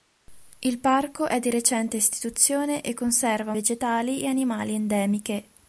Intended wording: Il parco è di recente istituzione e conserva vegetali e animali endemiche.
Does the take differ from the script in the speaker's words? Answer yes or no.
no